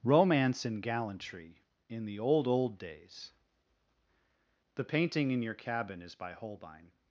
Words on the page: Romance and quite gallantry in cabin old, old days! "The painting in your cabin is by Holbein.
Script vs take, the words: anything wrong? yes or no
yes